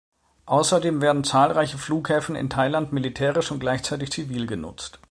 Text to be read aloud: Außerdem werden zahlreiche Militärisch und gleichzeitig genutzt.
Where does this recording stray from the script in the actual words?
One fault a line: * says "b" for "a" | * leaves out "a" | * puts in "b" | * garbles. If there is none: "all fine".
* puts in "Flughäfen in Thailand"
* puts in "zivil"